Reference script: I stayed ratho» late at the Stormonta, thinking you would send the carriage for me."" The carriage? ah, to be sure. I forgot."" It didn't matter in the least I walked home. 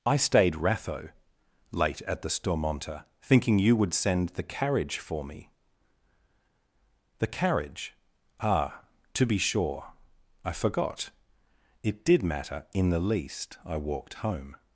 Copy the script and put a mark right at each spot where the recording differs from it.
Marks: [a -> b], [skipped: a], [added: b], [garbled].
I stayed ratho» late at the Stormonta, thinking you would send the carriage for me."" The carriage? ah, to be sure. I forgot."" It [didn't -> did] matter in the least I walked home.